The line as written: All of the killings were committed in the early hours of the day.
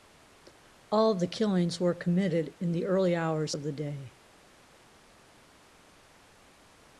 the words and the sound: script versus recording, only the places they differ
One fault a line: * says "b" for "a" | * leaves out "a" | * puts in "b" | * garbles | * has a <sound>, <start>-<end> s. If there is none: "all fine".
all fine